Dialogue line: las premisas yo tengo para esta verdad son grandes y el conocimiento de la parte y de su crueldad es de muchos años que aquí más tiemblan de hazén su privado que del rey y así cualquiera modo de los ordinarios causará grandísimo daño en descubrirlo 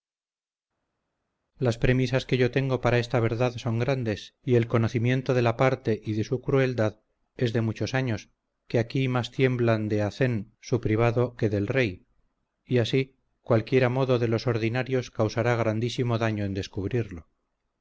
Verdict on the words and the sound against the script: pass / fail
fail